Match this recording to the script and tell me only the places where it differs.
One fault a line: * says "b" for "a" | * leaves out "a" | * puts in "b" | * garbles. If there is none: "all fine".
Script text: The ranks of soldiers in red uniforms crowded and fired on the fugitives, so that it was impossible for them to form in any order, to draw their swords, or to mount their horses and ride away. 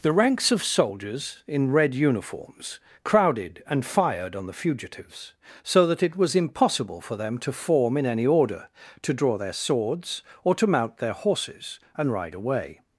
all fine